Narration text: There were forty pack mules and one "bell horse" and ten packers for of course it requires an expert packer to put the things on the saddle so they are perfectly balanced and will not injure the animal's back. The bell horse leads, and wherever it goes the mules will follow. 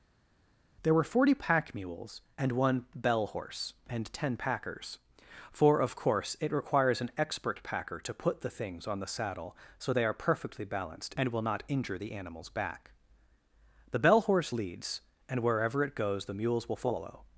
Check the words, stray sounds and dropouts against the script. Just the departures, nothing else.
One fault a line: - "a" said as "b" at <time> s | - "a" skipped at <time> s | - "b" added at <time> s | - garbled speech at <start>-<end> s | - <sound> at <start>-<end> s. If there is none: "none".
none